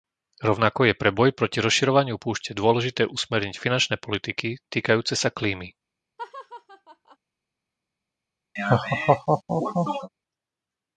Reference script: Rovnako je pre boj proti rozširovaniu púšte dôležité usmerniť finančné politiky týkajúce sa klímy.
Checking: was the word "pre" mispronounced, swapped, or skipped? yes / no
no